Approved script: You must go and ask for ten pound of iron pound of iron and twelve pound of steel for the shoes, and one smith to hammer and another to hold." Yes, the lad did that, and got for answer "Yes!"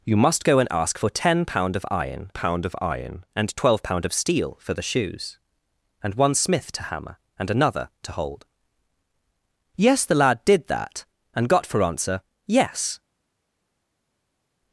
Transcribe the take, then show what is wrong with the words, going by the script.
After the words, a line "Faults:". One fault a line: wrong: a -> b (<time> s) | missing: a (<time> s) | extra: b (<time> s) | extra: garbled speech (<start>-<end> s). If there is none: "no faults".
You must go and ask for ten pound of iron pound of iron and twelve pound of steel for the shoes, and one smith to hammer and another to hold." Yes, the lad did that, and got for answer "Yes!"
Faults:
no faults